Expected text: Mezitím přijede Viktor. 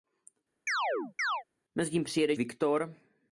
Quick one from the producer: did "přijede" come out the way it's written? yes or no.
yes